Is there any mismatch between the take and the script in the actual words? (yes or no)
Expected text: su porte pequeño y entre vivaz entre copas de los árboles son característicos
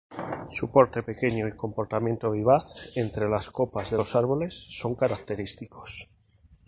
yes